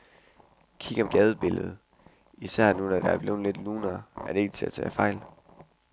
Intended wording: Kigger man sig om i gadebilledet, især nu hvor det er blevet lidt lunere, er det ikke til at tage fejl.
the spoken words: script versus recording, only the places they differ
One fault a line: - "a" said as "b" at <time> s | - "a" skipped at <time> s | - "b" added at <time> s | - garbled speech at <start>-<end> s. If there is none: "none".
- "man sig om" skipped at 1.0 s